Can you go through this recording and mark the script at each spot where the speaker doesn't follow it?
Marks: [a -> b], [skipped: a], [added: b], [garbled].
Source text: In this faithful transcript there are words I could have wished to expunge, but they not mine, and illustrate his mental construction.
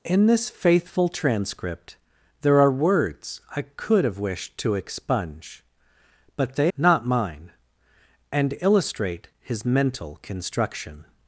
In this faithful transcript there are words I could have wished to expunge, but they not mine, and illustrate his mental construction.